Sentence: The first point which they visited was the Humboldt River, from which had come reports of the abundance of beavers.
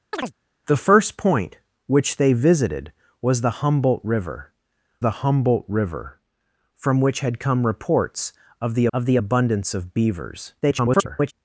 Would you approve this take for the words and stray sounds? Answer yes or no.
no